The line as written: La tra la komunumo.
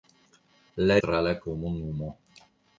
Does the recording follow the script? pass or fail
pass